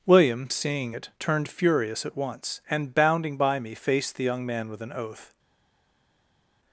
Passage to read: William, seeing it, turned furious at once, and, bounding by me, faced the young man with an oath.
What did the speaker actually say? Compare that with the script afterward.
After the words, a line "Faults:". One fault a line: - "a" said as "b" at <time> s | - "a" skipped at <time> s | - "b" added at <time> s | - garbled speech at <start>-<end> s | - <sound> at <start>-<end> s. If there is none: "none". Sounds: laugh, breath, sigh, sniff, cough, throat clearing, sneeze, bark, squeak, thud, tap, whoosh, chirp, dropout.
William, seeing it, turned furious at once, and, bounding by me, faced the young man with an oath.
Faults:
none